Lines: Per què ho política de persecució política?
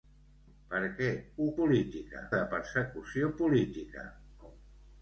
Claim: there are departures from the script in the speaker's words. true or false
false